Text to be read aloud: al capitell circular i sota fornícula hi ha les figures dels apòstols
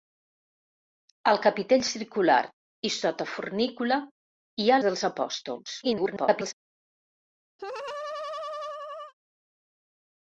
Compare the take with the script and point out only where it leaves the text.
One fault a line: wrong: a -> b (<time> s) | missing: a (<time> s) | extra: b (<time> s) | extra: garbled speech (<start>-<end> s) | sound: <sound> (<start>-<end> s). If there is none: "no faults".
missing: les figures (4.8 s)
extra: garbled speech (5.8-6.5 s)
sound: laugh (7.6-9.1 s)